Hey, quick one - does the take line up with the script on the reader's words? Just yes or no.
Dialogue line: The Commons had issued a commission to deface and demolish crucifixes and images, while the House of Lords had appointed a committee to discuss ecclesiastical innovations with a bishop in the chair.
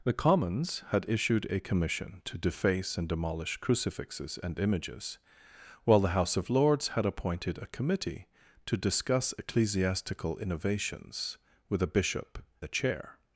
no